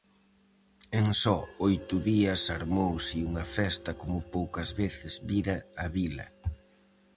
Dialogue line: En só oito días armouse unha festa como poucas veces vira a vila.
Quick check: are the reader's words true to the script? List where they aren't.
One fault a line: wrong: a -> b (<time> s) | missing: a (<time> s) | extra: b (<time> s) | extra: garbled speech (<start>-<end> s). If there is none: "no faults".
no faults